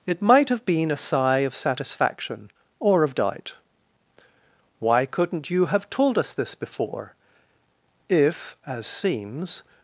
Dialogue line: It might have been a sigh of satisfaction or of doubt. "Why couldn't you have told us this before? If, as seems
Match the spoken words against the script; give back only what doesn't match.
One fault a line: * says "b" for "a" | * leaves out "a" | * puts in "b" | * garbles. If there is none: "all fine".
all fine